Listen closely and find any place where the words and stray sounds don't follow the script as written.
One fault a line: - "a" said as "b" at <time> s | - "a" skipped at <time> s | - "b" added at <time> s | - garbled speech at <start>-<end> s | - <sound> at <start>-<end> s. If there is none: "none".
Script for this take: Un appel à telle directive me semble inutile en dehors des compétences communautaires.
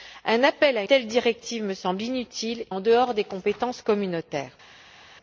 none